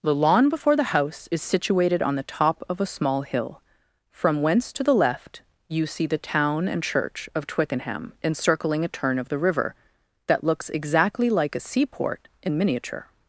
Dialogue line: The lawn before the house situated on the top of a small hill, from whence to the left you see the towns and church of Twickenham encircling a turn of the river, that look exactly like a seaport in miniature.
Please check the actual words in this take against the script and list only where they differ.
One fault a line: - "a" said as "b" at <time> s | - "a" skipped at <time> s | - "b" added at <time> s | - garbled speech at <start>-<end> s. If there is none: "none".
- "is" added at 1.3 s
- "towns" said as "town" at 6.2 s
- "look" said as "looks" at 10.4 s